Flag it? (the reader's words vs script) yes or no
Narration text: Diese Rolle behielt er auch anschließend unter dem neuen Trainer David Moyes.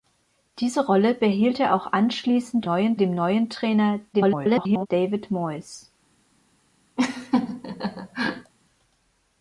yes